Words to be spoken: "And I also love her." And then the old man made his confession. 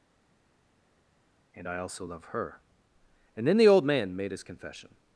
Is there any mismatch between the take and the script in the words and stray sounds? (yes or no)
no